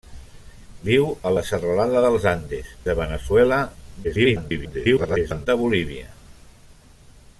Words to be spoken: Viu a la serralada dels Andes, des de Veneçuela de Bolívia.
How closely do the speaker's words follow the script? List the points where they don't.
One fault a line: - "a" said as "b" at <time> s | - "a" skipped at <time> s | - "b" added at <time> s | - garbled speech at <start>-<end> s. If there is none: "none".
- "des" skipped at 2.7 s
- garbled speech at 4.0-5.5 s